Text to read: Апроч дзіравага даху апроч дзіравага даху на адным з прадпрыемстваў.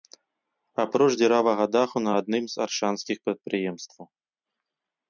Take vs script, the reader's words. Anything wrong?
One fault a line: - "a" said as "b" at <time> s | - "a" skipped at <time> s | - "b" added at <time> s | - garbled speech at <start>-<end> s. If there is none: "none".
- "апроч дзіравага даху" skipped at 2.0 s
- "аршанскіх" added at 2.7 s